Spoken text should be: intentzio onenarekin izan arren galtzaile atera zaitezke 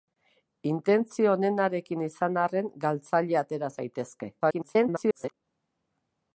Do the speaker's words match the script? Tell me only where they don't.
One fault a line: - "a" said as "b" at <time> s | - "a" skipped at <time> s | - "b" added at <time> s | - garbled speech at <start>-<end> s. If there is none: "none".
- garbled speech at 4.4-5.3 s